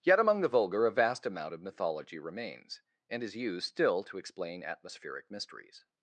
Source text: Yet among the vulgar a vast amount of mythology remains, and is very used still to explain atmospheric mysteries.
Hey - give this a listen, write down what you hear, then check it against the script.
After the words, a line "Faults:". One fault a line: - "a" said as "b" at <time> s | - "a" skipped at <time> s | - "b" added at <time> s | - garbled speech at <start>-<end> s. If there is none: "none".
Yet among the vulgar a vast amount of mythology remains, and is used still to explain atmospheric mysteries.
Faults:
- "very" skipped at 3.4 s